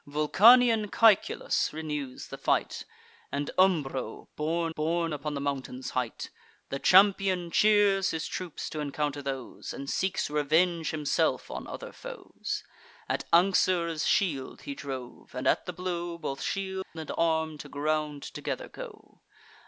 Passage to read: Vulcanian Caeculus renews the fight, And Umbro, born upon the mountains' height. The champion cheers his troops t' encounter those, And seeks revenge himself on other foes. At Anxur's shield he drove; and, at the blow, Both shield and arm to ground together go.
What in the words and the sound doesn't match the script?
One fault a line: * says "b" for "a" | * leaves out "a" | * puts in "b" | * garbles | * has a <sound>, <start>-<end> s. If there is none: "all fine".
* puts in "born"
* has a dropout, 16.8-17.0 s